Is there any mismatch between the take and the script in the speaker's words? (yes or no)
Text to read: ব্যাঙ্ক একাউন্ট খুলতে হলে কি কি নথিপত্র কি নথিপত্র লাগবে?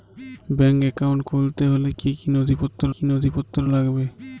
no